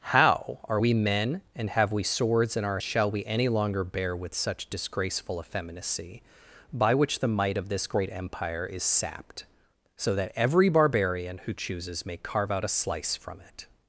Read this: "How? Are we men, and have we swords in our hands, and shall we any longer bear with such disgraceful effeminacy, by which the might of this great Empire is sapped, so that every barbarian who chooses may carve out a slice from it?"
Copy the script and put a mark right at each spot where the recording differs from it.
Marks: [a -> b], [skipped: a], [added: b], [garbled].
"How? Are we men, and have we swords in our [skipped: hands, and] shall we any longer bear with such disgraceful effeminacy, by which the might of this great Empire is sapped, so that every barbarian who chooses may carve out a slice from it?"